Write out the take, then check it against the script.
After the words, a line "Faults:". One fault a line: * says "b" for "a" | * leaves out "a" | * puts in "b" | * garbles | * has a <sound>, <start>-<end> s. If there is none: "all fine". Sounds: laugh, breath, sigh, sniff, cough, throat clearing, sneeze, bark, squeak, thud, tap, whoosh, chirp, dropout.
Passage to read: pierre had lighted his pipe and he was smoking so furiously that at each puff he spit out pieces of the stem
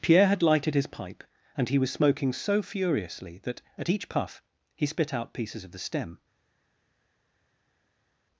pierre had lighted his pipe and he was smoking so furiously that at each puff he spit out pieces of the stem
Faults:
all fine